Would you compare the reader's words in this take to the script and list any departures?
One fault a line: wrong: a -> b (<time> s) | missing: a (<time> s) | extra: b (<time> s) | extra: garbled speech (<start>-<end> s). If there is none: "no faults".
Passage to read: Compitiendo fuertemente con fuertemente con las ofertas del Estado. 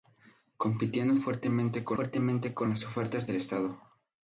no faults